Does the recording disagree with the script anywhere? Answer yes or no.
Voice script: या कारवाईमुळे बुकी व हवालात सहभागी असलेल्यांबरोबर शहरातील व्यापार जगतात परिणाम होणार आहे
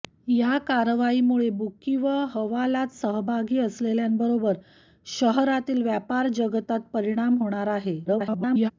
yes